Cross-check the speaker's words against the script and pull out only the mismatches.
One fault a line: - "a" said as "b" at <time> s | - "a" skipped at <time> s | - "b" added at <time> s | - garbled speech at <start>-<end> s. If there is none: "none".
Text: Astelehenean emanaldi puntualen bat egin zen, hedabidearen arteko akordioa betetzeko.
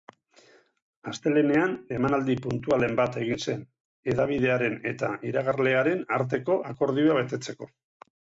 - "eta iragarlearen" added at 4.9 s